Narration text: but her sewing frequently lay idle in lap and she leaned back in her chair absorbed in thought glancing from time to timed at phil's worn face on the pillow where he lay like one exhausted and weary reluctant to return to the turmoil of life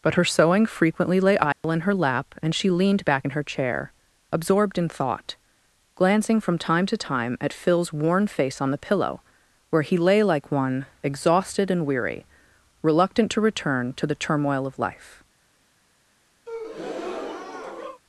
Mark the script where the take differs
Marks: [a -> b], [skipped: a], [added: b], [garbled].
but her sewing frequently lay idle in [added: her] lap and she leaned back in her chair absorbed in thought glancing from time to [timed -> time] at phil's worn face on the pillow where he lay like one exhausted and weary reluctant to return to the turmoil of life